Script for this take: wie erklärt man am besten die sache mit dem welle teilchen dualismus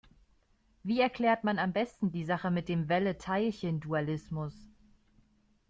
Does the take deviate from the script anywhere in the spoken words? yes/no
no